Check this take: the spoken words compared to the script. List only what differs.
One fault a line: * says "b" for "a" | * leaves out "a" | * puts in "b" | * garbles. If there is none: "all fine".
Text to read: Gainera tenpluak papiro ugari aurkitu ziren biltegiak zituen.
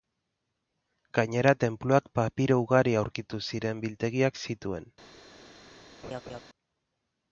all fine